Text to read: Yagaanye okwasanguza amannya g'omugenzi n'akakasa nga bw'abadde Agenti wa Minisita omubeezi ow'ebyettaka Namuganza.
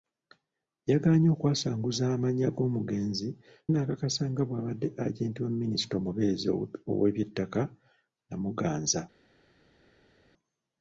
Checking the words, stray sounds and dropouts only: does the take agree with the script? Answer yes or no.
yes